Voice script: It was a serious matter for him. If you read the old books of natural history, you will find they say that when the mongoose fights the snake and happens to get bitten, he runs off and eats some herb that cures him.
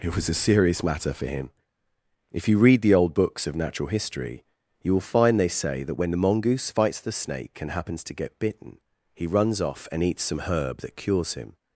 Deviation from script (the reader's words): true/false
false